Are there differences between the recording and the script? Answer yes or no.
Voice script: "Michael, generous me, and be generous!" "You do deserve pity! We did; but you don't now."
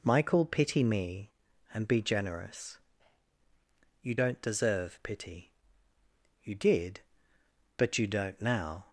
yes